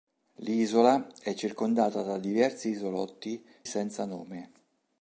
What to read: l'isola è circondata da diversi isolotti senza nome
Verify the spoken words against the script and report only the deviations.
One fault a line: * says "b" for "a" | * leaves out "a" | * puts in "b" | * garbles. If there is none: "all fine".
all fine